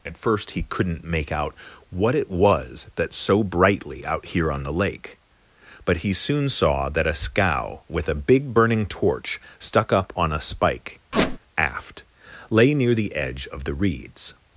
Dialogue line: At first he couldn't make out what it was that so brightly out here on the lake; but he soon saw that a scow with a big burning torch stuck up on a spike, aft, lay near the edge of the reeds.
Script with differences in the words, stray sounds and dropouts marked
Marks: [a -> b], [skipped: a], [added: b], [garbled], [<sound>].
At first he couldn't make out what it was that so brightly out here on the lake; but he soon saw that a scow with a big burning torch stuck up on a spike, [squeak] aft, lay near the edge of the reeds.